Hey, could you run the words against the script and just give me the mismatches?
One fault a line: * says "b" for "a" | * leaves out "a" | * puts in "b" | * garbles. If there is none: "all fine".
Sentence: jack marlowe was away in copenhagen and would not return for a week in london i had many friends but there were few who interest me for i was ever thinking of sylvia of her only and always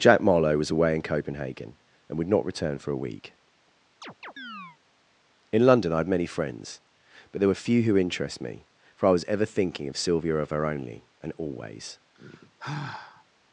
all fine